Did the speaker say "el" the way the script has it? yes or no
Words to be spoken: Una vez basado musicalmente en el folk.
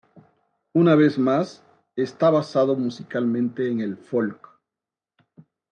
yes